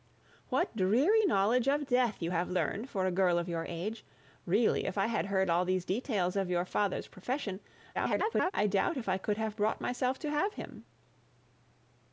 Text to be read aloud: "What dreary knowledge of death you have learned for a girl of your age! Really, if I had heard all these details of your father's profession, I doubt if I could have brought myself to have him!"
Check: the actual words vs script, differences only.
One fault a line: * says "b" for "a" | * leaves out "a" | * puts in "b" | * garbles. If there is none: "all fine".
* garbles